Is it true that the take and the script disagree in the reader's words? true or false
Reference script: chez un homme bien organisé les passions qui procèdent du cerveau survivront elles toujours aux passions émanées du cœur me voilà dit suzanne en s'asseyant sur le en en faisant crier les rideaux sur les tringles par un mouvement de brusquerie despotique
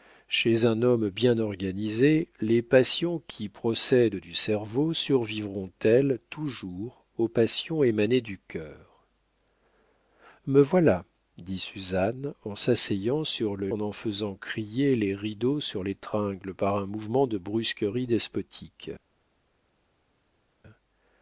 false